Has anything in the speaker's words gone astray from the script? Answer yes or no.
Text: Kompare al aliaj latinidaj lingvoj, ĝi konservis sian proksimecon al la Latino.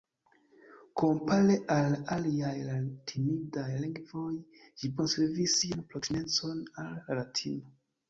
no